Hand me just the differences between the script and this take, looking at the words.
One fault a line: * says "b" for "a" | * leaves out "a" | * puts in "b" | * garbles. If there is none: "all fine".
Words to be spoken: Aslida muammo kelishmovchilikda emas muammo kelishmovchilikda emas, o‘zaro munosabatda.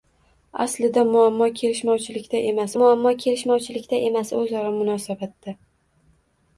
all fine